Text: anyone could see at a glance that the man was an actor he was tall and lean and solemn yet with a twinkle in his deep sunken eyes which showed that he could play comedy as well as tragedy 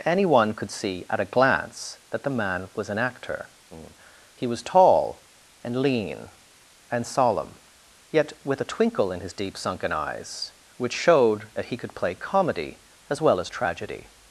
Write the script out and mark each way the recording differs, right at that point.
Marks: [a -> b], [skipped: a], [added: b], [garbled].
anyone could see at a glance that the man was an actor he was tall and lean and solemn yet with a twinkle in his deep sunken eyes which showed that he could play comedy as well as tragedy